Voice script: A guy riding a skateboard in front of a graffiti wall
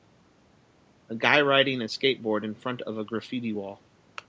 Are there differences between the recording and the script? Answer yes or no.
no